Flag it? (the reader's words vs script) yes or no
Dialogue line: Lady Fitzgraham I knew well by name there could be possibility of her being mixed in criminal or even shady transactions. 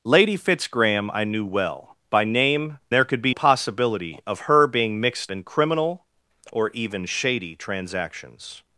no